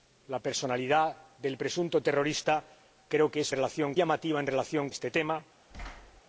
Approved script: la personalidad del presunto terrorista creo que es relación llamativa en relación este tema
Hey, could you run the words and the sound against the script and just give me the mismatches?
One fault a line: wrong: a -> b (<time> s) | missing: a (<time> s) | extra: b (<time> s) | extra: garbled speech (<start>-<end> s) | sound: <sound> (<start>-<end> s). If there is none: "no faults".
sound: thud (5.7-6.2 s)